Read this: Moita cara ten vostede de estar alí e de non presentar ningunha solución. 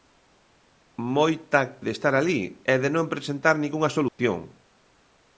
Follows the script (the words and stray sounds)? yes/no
no